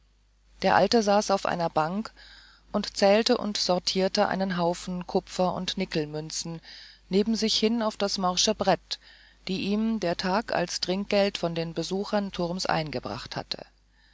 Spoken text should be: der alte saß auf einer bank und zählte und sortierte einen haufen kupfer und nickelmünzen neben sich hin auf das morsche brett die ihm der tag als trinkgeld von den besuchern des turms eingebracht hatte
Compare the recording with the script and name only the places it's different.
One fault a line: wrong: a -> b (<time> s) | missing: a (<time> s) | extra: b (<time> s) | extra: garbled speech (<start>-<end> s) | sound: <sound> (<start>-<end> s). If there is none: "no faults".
missing: des (12.3 s)